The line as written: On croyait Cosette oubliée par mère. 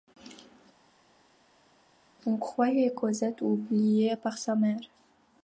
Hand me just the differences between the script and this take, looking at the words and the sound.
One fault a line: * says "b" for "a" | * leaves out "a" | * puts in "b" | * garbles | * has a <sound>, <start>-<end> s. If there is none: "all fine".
* puts in "sa"